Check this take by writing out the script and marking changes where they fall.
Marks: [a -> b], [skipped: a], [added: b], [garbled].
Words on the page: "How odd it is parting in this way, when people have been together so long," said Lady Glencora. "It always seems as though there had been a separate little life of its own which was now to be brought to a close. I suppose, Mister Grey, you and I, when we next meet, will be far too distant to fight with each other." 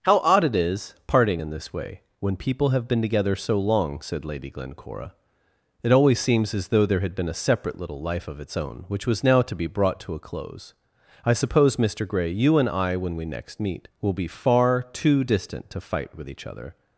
"How odd it is parting in this way, when people have been together so long," said Lady Glencora. "It always seems as though there had been a separate little life of its own which was now to be brought to a close. I suppose, Mister Grey, you and I, when we next meet, will be far too distant to fight with each other."